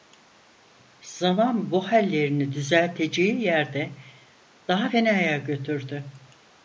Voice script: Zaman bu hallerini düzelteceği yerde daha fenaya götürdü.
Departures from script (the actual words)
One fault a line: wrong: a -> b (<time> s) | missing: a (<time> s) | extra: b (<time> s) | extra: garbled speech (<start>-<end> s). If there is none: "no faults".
no faults